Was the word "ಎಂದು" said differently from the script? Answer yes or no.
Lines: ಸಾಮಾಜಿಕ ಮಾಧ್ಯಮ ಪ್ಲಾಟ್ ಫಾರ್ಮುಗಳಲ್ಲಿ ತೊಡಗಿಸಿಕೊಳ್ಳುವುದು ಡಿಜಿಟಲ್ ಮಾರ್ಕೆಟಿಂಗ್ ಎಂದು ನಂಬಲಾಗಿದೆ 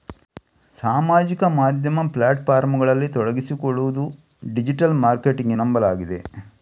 yes